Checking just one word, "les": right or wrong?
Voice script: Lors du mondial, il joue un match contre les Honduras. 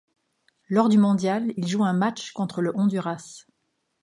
wrong